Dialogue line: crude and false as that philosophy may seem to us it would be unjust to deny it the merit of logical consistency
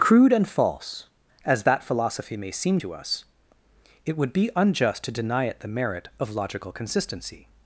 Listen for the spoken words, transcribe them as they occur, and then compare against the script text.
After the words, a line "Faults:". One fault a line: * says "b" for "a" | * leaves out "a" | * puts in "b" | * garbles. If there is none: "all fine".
crude and false as that philosophy may seem to us it would be unjust to deny it the merit of logical consistency
Faults:
all fine